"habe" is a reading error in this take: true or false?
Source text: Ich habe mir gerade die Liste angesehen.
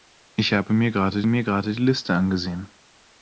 false